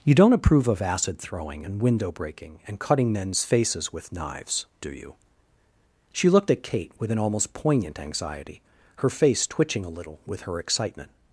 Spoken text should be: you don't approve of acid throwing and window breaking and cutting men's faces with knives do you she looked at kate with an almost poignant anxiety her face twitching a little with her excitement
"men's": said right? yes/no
yes